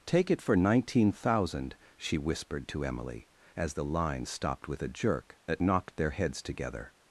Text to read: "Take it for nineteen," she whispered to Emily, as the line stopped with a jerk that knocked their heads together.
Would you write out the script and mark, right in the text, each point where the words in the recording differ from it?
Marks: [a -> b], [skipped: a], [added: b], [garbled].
"Take it for nineteen," [added: thousand] she whispered to Emily, as the line stopped with a jerk that knocked their heads together.